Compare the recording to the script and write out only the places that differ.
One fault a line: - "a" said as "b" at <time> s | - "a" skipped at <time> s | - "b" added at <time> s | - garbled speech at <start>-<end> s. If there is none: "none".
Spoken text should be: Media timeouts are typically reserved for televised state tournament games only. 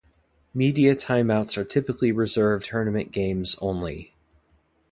- "for televised state" skipped at 2.6 s